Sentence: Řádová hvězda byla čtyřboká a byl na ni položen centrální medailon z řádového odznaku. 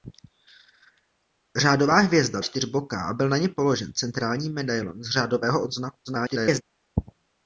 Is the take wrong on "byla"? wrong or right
wrong